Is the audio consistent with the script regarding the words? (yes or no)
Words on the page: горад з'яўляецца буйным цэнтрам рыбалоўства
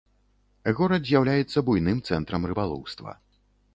yes